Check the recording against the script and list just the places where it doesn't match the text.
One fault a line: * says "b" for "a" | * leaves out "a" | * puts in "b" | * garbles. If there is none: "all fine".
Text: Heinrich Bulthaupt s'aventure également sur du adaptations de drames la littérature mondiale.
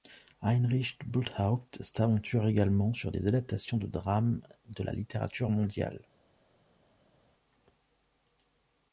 * says "des" for "du"
* puts in "de"